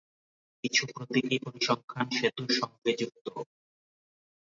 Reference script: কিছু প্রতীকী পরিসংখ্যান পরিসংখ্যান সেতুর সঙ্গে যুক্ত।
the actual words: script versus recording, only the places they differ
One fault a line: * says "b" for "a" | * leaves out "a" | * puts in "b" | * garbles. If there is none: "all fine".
* leaves out "পরিসংখ্যান"